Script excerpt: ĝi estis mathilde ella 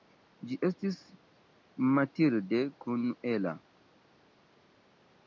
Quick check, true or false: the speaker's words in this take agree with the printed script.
false